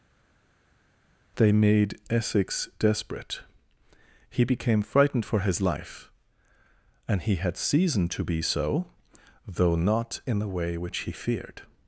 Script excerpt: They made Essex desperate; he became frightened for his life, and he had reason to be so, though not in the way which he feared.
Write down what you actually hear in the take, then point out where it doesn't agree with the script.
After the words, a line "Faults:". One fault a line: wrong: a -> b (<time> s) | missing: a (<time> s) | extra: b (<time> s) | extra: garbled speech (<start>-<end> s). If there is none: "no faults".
They made Essex desperate; he became frightened for his life, and he had season to be so, though not in the way which he feared.
Faults:
wrong: reason -> season (7.6 s)